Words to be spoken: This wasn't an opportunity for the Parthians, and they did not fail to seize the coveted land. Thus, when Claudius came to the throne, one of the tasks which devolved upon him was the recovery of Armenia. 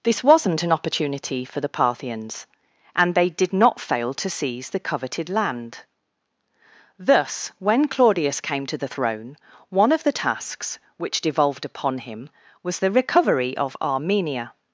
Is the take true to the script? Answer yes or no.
yes